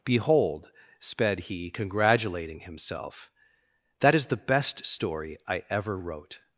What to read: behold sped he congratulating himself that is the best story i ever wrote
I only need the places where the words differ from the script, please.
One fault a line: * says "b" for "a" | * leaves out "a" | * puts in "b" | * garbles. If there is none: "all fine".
all fine